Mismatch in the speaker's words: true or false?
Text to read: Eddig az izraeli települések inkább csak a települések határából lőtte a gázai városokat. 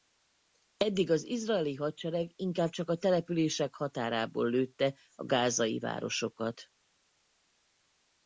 true